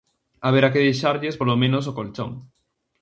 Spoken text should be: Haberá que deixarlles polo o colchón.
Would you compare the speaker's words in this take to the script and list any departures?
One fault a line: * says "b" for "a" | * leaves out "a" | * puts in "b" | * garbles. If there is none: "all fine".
* puts in "menos"